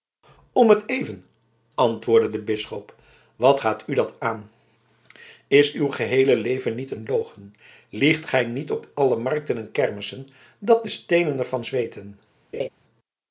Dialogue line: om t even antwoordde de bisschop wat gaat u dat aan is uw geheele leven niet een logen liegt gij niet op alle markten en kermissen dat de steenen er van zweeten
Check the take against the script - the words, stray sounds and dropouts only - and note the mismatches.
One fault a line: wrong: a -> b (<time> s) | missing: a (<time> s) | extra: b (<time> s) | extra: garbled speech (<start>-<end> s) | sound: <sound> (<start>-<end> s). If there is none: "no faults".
sound: laugh (12.5-12.7 s)